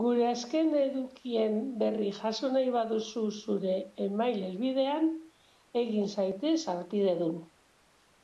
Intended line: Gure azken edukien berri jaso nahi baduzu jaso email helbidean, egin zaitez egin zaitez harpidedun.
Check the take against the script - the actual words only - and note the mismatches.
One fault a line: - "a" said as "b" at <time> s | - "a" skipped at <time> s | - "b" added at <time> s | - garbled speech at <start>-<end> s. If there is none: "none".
- "jaso" said as "zure" at 3.4 s
- "egin zaitez" skipped at 6.6 s